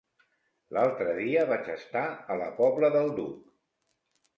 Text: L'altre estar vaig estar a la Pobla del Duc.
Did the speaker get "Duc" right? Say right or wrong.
right